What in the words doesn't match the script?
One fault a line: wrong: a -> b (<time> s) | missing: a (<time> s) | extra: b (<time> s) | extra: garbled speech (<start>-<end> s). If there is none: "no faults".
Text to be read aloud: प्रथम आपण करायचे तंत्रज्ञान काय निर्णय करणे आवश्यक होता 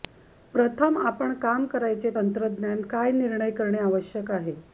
extra: काम (1.4 s)
wrong: होता -> आहे (4.3 s)